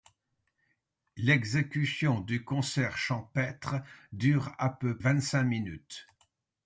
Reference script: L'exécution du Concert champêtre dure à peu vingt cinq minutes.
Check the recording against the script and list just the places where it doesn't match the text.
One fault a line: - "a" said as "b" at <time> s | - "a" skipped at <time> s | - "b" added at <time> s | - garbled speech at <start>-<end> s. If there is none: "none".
none